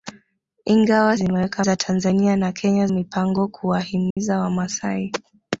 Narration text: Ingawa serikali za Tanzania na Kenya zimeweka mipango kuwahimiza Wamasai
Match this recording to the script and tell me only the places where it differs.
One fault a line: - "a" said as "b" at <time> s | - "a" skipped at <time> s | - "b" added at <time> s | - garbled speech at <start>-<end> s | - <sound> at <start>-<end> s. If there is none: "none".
- "serikali" said as "zimeweka" at 1.1 s
- "zimeweka" skipped at 2.9 s
- dropout at 4.1-4.2 s